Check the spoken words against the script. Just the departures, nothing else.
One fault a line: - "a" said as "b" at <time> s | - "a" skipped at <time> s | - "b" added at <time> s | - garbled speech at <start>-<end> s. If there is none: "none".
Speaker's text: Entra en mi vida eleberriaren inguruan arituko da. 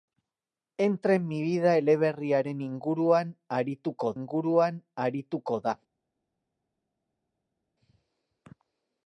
- "inguruan arituko" added at 4.2 s